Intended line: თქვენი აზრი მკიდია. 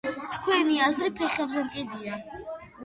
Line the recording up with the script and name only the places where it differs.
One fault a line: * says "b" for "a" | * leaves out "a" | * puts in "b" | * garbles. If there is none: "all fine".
* puts in "ფეხებზე"